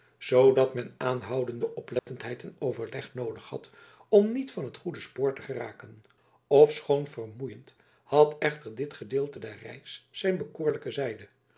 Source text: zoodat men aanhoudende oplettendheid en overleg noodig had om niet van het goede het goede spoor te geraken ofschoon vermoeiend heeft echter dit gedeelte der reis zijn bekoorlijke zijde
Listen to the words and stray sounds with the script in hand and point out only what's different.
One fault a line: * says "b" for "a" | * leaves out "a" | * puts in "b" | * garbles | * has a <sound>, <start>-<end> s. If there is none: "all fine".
* has a dropout, 2.0-2.1 s
* leaves out "het goede"
* says "had" for "heeft"